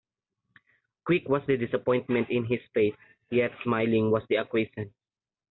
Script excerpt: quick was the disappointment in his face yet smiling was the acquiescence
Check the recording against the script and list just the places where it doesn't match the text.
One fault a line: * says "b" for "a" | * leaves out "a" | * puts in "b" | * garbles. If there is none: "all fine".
all fine